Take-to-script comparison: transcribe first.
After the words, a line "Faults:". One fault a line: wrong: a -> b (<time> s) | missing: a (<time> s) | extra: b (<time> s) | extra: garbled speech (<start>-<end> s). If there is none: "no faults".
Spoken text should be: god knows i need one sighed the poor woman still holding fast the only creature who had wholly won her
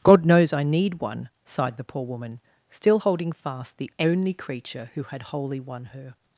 god knows i need one sighed the poor woman still holding fast the only creature who had wholly won her
Faults:
no faults